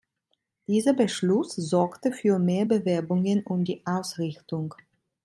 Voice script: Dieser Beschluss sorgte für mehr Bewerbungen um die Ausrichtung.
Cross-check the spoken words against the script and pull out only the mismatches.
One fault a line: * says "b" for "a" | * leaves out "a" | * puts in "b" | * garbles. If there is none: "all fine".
all fine